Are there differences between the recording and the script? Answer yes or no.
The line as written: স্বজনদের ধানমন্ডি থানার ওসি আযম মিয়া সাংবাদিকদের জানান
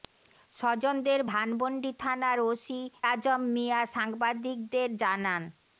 no